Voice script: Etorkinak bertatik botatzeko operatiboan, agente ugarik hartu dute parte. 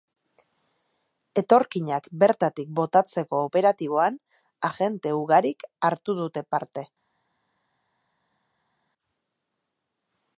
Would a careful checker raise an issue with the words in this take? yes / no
no